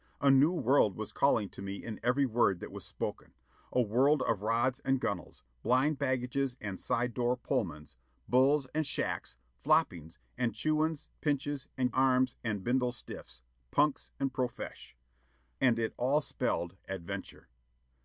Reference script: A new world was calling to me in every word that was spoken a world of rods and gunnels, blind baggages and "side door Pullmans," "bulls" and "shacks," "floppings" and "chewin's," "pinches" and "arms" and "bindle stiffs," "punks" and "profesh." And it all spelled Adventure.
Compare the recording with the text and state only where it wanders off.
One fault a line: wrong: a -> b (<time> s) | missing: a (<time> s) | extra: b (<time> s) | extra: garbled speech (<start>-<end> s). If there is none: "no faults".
no faults